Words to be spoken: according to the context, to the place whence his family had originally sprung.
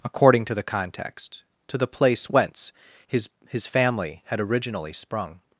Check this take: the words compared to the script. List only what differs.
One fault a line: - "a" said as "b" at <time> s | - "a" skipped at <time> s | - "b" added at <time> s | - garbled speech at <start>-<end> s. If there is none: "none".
- "his" added at 3.5 s